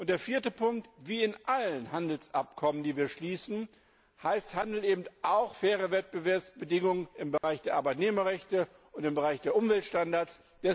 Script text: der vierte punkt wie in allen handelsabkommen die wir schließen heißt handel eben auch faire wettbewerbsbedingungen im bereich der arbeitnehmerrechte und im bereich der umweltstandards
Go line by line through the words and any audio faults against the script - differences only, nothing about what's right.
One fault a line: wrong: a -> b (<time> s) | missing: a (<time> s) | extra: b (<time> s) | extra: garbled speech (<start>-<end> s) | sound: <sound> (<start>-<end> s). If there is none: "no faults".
sound: dropout (7.4-7.4 s)